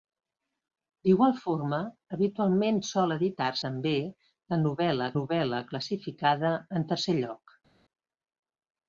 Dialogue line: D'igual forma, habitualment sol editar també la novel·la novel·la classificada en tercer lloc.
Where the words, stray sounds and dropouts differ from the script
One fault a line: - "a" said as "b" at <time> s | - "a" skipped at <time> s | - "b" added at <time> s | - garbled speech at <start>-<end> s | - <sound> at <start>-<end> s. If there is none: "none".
none